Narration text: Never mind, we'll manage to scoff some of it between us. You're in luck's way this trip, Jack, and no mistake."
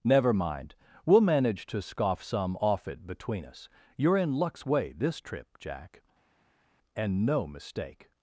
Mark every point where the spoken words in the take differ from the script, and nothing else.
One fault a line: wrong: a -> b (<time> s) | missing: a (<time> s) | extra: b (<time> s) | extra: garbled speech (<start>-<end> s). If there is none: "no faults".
wrong: of -> off (2.6 s)